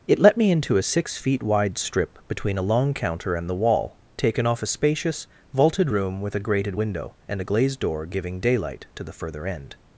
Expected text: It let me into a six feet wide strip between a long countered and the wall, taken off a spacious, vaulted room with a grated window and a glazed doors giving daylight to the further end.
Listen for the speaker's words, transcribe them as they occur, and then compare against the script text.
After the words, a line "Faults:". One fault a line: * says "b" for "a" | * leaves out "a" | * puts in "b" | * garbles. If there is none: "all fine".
It let me into a six feet wide strip between a long counter and the wall, taken off a spacious, vaulted room with a grated window and a glazed door giving daylight to the further end.
Faults:
* says "counter" for "countered"
* says "door" for "doors"